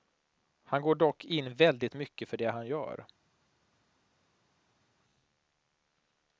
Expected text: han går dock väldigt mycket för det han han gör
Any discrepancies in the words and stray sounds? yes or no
yes